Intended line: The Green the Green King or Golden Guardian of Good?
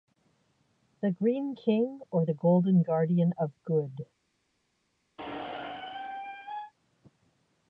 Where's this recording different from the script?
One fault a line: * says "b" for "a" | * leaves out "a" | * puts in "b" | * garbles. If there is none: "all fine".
* leaves out "the Green"
* puts in "the"